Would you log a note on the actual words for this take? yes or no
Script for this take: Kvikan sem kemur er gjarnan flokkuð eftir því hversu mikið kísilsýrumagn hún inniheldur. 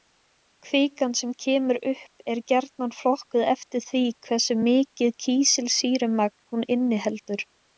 yes